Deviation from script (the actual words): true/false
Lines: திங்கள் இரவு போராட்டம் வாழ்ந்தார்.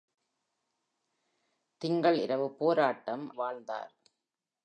false